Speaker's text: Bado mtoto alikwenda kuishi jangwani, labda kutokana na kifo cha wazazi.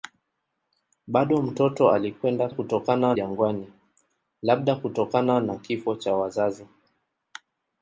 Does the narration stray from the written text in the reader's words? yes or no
yes